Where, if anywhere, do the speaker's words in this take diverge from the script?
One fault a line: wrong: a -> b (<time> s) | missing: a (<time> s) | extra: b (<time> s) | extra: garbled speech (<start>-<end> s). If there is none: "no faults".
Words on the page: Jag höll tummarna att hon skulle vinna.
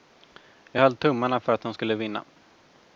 extra: för (1.4 s)